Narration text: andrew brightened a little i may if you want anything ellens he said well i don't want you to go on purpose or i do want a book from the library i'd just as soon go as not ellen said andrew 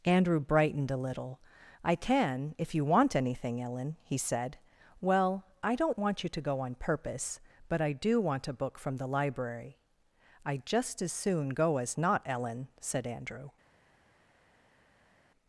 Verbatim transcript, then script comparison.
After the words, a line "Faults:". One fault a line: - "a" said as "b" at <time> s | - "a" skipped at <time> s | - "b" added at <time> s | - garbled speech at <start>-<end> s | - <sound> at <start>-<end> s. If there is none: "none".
andrew brightened a little i can if you want anything ellen he said well i don't want you to go on purpose but i do want a book from the library i'd just as soon go as not ellen said andrew
Faults:
- "may" said as "can" at 1.9 s
- "ellens" said as "ellen" at 3.6 s
- "or" said as "but" at 7.7 s